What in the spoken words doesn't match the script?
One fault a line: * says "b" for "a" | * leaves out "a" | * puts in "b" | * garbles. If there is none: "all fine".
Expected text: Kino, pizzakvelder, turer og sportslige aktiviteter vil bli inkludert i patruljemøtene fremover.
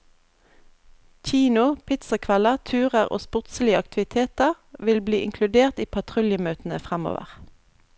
all fine